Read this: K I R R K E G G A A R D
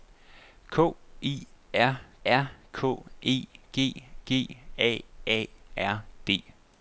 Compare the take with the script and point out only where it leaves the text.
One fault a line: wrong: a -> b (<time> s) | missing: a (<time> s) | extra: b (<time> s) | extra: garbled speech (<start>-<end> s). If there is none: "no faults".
no faults